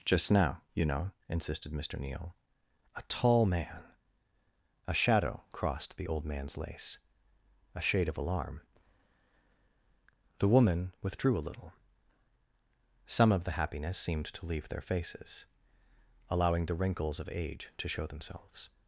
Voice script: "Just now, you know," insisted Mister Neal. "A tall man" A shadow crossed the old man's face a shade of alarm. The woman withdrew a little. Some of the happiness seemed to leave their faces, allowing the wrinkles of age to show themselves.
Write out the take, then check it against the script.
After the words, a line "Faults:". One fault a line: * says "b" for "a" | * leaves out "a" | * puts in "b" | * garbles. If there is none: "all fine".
"Just now, you know," insisted Mister Neal. "A tall man" A shadow crossed the old man's lace a shade of alarm. The woman withdrew a little. Some of the happiness seemed to leave their faces, allowing the wrinkles of age to show themselves.
Faults:
* says "lace" for "face"